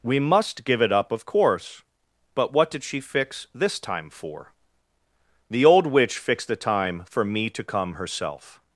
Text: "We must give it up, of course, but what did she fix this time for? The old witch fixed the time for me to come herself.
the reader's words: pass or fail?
pass